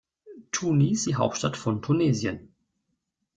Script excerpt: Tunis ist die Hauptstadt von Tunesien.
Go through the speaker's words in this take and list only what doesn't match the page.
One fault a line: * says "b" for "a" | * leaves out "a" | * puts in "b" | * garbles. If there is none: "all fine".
* leaves out "ist"